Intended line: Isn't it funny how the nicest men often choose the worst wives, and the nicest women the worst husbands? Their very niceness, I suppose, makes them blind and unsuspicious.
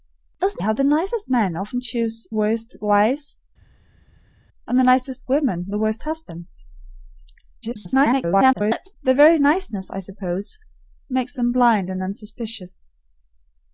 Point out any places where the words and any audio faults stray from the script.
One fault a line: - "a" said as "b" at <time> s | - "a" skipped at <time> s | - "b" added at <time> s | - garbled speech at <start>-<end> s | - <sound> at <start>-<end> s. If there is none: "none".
- "it funny" skipped at 0.6 s
- "the" skipped at 2.3 s
- garbled speech at 7.6-9.0 s